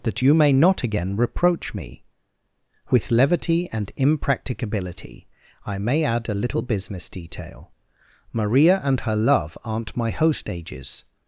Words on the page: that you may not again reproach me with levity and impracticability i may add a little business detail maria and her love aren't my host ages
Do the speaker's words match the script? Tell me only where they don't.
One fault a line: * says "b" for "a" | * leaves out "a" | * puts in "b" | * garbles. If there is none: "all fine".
all fine